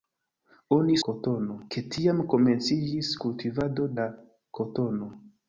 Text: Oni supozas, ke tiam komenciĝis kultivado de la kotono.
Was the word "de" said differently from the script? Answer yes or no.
yes